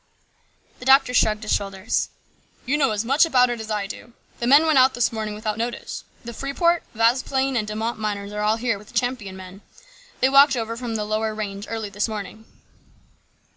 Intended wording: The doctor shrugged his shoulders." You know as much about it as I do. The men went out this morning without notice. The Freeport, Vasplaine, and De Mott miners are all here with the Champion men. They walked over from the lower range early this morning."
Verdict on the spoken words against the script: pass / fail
pass